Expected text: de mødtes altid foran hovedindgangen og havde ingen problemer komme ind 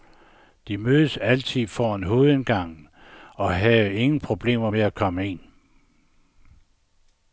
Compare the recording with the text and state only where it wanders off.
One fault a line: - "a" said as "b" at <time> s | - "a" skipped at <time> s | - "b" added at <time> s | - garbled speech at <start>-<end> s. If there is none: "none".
- "med at" added at 4.7 s